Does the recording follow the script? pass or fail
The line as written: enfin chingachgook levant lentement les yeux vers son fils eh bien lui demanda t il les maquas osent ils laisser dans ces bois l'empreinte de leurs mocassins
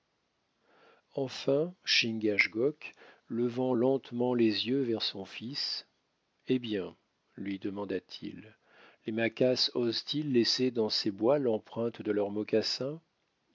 pass